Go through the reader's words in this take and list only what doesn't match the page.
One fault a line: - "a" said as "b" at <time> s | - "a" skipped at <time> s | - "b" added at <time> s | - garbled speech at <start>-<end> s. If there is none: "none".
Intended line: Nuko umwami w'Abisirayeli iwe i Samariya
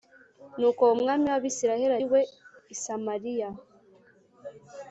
none